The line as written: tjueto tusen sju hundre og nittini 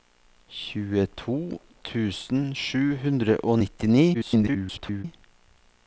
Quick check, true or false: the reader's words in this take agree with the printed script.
false